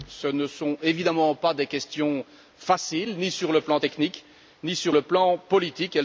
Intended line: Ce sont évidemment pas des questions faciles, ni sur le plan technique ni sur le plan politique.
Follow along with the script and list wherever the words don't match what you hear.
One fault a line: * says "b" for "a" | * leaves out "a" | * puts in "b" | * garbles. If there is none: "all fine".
* puts in "ne"